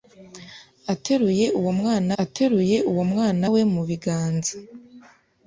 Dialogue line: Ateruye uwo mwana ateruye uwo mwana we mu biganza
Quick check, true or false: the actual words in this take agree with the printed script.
true